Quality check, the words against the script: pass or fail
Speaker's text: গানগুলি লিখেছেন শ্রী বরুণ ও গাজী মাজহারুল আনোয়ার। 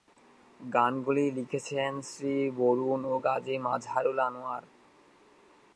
pass